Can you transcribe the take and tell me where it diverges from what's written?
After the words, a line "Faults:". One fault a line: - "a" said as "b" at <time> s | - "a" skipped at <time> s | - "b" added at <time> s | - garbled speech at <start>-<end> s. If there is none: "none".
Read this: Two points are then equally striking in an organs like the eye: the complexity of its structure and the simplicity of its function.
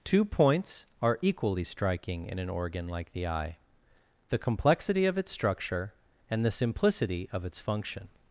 Two points are equally striking in an organ like the eye: the complexity of its structure and the simplicity of its function.
Faults:
- "then" skipped at 1.2 s
- "organs" said as "organ" at 2.5 s